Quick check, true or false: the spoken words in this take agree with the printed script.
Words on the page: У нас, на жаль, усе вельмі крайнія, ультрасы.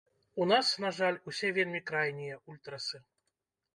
true